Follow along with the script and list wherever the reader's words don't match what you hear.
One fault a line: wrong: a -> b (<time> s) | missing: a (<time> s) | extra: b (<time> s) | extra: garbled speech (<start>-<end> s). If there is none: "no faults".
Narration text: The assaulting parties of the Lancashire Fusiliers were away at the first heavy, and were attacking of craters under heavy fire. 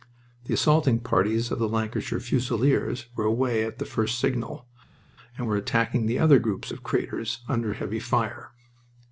wrong: heavy -> signal (4.2 s)
extra: the other groups (6.1 s)